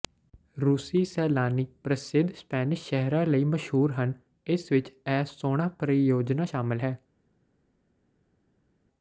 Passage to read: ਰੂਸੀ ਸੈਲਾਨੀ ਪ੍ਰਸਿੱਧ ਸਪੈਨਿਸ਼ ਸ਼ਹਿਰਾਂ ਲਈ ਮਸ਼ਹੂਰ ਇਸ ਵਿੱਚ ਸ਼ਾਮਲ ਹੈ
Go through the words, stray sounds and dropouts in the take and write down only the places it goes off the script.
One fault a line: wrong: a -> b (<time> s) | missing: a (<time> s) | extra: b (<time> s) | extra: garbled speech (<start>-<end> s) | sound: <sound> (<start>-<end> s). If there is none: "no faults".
extra: ਹਨ (3.9 s)
extra: ਇਹ ਸੋਹਣਾ ਪਰਿਯੋਜਨਾ (4.9 s)